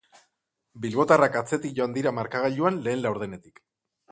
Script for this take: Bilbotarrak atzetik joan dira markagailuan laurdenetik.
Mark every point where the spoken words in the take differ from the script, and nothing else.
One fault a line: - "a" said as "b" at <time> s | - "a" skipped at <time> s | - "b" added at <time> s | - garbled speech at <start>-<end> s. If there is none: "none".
- "lehen" added at 2.9 s